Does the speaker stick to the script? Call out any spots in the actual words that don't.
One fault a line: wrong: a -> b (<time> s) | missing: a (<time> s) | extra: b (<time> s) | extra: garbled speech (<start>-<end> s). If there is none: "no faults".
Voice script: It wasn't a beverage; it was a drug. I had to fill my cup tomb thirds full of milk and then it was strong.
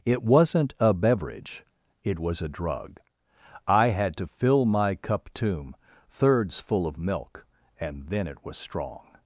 no faults